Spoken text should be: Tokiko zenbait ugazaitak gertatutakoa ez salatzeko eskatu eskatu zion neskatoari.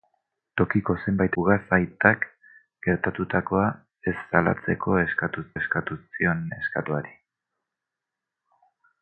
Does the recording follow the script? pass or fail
pass